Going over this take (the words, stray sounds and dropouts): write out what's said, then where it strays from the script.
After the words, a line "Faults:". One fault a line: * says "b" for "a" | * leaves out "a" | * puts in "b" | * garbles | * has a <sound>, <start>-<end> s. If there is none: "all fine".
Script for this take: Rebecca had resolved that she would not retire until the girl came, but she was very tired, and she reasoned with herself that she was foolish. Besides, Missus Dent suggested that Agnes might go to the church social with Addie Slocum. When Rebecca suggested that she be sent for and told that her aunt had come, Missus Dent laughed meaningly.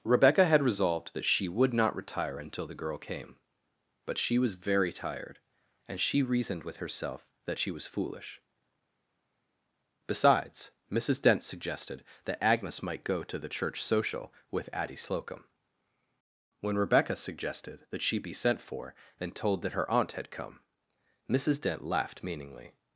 Rebecca had resolved that she would not retire until the girl came, but she was very tired, and she reasoned with herself that she was foolish. Besides, Missus Dent suggested that Agnes might go to the church social with Addie Slocum. When Rebecca suggested that she be sent for and told that her aunt had come, Missus Dent laughed meaningly.
Faults:
all fine